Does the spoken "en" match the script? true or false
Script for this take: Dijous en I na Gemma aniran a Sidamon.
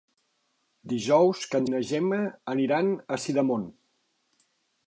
true